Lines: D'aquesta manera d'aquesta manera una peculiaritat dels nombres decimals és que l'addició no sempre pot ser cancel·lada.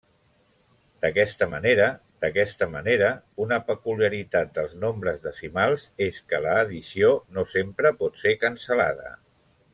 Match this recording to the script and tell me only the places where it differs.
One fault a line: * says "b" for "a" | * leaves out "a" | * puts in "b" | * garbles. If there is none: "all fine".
all fine